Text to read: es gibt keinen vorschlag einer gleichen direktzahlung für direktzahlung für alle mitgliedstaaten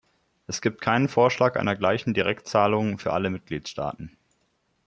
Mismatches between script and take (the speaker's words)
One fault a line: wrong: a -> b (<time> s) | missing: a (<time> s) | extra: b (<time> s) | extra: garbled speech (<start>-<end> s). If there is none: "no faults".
missing: direktzahlung für (3.1 s)